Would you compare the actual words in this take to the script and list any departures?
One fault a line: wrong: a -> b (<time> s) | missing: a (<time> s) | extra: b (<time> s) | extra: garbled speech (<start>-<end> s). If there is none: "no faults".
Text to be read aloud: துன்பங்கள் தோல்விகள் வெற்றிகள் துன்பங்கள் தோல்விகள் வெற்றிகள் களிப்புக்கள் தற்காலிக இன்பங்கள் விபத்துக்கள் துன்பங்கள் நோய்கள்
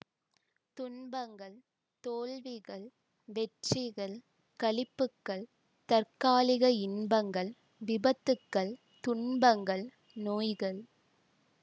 missing: துன்பங்கள் தோல்விகள் வெற்றிகள் (4.2 s)